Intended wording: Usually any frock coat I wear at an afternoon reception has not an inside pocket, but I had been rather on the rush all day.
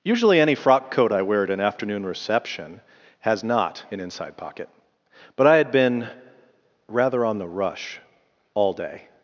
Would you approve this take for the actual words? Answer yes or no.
yes